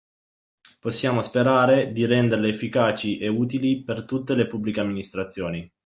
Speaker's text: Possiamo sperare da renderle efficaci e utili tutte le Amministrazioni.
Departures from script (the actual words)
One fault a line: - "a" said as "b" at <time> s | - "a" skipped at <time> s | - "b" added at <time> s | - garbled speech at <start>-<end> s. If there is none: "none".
- "da" said as "di" at 1.9 s
- "per" added at 3.8 s
- "Pubbliche" added at 4.5 s